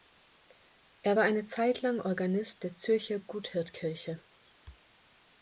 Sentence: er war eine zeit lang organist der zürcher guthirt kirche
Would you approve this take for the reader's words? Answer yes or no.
yes